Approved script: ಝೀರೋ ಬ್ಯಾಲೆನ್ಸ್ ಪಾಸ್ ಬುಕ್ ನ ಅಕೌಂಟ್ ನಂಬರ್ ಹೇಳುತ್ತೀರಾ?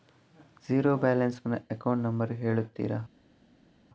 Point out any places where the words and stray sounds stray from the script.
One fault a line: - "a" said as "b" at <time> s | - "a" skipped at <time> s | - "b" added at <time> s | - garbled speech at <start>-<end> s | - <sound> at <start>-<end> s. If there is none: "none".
- "ಪಾಸ್ ಬುಕ್" skipped at 1.4 s